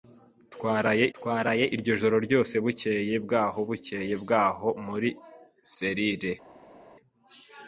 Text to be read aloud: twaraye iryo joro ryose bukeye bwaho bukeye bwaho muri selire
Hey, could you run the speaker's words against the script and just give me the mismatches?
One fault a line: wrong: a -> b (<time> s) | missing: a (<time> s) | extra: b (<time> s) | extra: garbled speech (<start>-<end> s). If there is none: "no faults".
extra: twaraye (1.2 s)